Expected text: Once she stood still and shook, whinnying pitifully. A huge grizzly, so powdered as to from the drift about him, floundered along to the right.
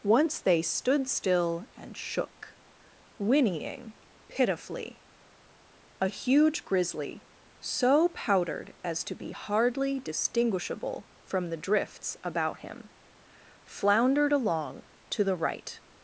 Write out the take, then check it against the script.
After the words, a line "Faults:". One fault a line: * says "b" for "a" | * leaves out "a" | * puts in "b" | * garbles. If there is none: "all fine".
Once they stood still and shook, whinnying pitifully. A huge grizzly, so powdered as to be hardly distinguishable from the drifts about him, floundered along to the right.
Faults:
* says "they" for "she"
* puts in "be hardly distinguishable"
* says "drifts" for "drift"